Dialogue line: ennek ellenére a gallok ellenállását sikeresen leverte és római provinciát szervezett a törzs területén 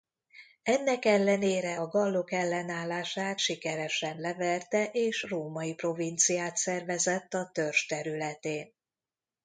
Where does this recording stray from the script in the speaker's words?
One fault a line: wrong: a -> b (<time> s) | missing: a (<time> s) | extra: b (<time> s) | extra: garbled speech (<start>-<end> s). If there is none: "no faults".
no faults